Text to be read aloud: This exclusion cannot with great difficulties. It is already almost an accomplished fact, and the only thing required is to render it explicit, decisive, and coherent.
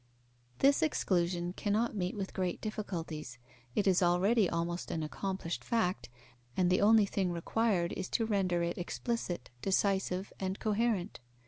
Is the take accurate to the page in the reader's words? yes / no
no